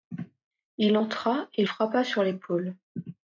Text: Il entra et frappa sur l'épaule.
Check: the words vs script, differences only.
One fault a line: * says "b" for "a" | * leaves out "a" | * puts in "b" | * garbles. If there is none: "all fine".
all fine